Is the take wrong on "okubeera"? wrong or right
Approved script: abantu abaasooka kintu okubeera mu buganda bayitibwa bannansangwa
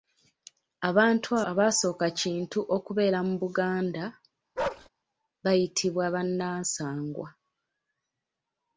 right